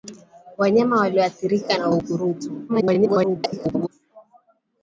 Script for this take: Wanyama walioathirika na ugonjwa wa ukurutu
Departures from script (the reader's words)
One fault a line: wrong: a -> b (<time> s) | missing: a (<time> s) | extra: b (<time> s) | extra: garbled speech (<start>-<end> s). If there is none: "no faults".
missing: ugonjwa (1.9 s)
extra: garbled speech (2.7-3.9 s)